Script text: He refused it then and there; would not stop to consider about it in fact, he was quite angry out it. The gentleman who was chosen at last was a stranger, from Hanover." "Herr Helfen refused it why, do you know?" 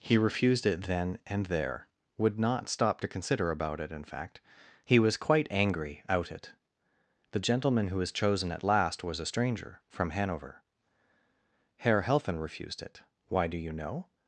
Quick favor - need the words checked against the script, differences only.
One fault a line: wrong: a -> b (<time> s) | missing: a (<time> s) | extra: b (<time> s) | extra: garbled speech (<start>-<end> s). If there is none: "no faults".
no faults